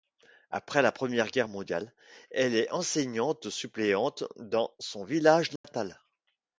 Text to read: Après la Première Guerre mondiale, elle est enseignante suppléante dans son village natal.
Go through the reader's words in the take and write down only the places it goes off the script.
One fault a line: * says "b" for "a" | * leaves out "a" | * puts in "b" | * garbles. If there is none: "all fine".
all fine